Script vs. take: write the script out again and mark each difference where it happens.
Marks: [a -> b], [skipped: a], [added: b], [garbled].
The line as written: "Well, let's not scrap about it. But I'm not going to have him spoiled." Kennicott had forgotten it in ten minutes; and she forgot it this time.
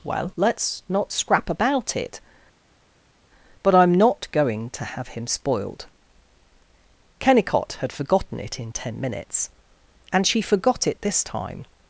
"Well, let's not scrap about it. But I'm not going to have him spoiled." Kennicott had forgotten it in ten minutes; and she forgot it this time.